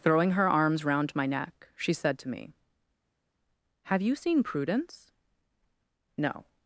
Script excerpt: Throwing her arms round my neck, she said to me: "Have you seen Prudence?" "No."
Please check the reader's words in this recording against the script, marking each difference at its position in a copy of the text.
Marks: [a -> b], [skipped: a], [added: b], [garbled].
Throwing her arms round my neck, she said to me: "Have you seen Prudence?" "No."